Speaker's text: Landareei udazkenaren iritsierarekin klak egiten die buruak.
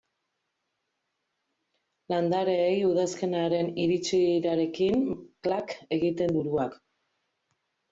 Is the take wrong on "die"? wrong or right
wrong